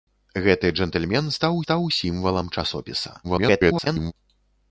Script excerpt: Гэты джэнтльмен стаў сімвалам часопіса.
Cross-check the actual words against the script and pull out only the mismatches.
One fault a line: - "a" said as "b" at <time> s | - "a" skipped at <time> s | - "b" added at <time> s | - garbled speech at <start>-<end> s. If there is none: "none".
- "стаў" added at 1.6 s
- garbled speech at 3.2-4.1 s